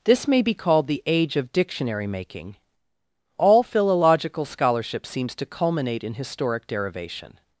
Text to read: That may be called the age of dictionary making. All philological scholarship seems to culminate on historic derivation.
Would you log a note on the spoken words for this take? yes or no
yes